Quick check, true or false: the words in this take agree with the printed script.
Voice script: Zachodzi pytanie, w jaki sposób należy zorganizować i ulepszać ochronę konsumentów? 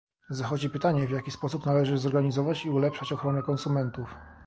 true